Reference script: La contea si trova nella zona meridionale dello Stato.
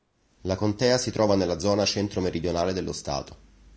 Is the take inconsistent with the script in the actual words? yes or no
yes